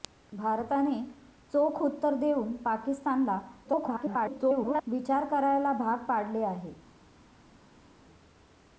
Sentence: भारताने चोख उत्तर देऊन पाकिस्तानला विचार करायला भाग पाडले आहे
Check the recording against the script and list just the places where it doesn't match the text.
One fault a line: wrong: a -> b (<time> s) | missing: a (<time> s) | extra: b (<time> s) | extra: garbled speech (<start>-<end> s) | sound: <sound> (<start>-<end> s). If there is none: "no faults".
extra: garbled speech (3.6-4.8 s)